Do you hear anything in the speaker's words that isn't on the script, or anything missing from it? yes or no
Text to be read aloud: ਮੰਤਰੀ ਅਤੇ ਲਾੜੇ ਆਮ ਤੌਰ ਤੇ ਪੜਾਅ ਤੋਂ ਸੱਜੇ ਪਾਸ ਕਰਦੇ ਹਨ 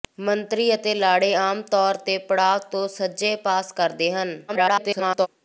yes